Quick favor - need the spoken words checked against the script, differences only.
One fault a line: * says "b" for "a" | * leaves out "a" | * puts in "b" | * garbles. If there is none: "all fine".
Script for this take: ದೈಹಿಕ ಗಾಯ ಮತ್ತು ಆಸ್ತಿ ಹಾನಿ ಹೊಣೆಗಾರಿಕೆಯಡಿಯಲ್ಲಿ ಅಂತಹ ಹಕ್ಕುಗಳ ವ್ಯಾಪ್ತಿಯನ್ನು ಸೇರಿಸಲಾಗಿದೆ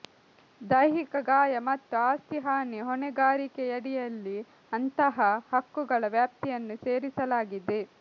all fine